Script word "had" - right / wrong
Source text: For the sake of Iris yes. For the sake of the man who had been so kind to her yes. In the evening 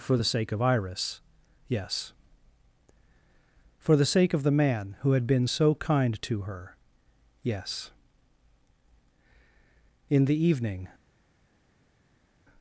right